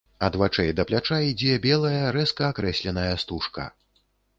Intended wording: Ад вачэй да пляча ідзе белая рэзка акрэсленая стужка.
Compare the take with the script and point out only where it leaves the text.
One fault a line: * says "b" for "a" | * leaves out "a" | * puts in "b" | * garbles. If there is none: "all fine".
all fine